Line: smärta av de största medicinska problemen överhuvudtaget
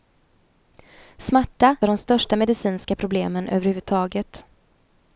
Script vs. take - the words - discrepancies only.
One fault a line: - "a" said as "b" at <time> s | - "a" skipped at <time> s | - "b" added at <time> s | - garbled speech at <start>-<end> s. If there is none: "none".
none